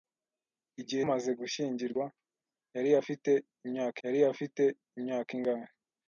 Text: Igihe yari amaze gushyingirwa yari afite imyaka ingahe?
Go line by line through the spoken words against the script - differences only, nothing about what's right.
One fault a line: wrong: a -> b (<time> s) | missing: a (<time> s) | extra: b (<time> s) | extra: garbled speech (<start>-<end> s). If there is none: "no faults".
extra: amaze gushyingirwa (1.0 s)
wrong: amaze gushyingirwa -> afite imyaka (3.0 s)